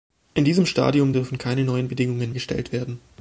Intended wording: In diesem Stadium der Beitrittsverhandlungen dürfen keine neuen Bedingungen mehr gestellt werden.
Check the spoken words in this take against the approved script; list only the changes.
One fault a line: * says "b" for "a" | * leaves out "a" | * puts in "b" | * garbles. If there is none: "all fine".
* leaves out "der Beitrittsverhandlungen"
* leaves out "mehr"